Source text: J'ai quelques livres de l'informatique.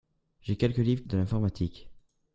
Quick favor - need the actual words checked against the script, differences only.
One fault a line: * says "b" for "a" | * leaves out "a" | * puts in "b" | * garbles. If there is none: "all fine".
all fine